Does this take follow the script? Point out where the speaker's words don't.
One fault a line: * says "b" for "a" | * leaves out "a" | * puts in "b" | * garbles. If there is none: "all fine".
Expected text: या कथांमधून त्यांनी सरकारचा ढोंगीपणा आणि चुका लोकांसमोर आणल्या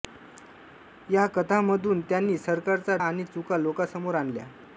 * leaves out "ढोंगीपणा"